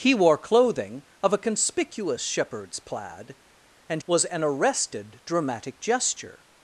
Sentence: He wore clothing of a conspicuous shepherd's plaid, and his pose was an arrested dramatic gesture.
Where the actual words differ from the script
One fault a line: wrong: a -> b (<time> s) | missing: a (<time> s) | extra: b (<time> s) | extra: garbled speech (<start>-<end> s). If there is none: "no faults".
missing: his pose (4.0 s)